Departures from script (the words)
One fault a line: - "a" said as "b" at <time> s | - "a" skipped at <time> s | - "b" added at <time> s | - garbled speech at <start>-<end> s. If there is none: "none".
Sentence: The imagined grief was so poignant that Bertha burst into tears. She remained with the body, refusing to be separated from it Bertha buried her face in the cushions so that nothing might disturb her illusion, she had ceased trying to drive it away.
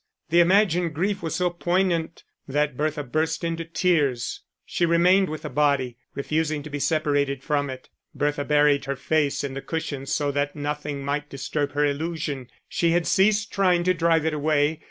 none